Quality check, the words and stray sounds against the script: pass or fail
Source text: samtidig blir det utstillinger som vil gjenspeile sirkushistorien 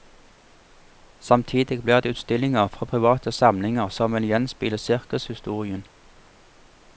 fail